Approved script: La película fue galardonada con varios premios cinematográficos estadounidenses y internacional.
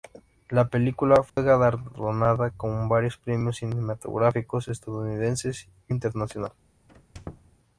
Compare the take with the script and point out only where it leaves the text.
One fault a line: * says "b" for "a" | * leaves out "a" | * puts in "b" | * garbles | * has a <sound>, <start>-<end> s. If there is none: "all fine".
* has a dropout, 1.3-1.4 s
* has a squeak, 6.9-7.5 s